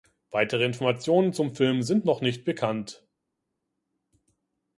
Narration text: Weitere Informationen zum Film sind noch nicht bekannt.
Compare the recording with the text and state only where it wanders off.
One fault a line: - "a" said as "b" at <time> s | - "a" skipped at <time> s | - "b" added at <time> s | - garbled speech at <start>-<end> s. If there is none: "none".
none